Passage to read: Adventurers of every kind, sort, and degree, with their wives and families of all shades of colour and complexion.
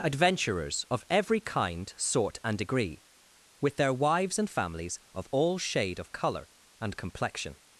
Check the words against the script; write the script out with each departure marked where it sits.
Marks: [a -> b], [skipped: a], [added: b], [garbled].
Adventurers of every kind, sort, and degree, with their wives and families of all [shades -> shade] of colour and complexion.